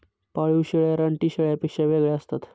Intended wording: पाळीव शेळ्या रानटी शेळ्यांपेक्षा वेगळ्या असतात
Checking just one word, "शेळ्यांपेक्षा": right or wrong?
right